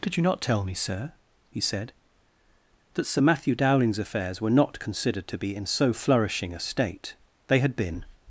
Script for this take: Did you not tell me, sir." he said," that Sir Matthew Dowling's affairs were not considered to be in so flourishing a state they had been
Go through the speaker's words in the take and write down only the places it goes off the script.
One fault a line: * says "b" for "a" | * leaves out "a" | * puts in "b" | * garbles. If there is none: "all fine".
all fine